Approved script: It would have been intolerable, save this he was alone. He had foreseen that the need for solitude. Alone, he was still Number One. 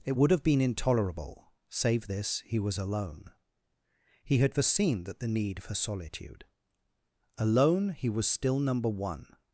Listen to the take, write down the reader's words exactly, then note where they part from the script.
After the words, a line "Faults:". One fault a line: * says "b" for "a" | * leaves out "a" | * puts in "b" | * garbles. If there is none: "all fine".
It would have been intolerable, save this he was alone. He had foreseen that the need for solitude. Alone, he was still Number One.
Faults:
all fine